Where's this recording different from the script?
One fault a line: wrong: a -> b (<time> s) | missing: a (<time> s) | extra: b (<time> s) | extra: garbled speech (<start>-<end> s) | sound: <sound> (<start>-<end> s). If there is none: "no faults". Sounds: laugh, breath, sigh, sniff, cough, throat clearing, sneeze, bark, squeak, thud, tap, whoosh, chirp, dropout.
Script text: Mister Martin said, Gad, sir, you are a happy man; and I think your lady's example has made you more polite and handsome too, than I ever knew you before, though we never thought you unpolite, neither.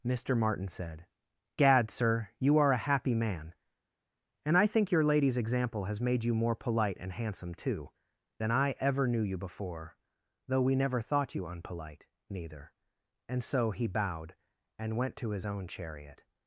extra: And so he bowed and went to his own chariot (13.3 s)